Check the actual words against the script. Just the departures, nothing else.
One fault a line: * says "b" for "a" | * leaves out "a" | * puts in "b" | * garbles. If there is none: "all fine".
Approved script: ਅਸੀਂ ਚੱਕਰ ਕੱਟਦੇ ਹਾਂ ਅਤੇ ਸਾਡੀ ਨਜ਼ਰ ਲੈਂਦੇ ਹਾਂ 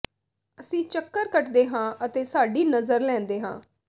all fine